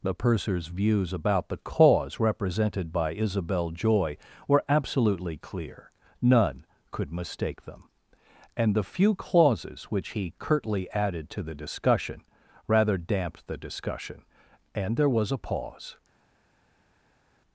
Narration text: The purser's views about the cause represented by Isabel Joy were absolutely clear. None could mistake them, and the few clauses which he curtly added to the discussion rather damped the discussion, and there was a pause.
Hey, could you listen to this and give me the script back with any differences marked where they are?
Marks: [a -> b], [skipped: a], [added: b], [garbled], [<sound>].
The purser's views about the cause represented by Isabel Joy were absolutely clear. None could mistake them, and the few clauses which he curtly added to the discussion rather damped the discussion, and there was a pause.